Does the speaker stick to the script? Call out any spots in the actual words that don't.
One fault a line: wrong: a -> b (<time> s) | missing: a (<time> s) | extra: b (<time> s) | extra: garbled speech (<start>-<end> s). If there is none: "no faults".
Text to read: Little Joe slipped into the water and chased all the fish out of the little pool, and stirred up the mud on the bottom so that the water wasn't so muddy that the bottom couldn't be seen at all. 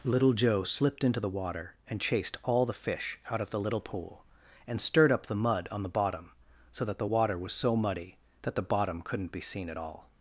wrong: wasn't -> was (7.4 s)